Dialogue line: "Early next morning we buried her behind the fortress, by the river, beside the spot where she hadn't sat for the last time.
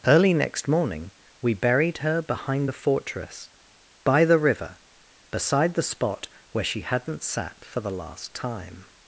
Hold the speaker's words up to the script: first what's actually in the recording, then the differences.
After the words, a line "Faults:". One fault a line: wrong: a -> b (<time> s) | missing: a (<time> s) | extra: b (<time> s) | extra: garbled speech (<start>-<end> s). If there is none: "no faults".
"Early next morning we buried her behind the fortress, by the river, beside the spot where she hadn't sat for the last time.
Faults:
no faults